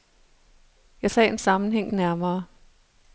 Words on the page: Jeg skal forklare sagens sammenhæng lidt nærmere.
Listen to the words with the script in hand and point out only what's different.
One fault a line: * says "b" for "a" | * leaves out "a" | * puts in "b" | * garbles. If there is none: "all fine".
* leaves out "skal forklare"
* leaves out "lidt"